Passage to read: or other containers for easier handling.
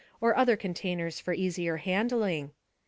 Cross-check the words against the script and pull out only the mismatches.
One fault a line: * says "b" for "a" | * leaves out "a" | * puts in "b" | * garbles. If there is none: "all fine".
all fine